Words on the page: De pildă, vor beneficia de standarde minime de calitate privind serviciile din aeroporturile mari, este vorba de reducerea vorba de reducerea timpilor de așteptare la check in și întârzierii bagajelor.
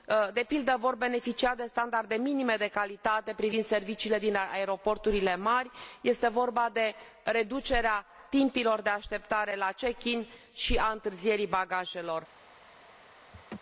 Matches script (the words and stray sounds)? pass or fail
fail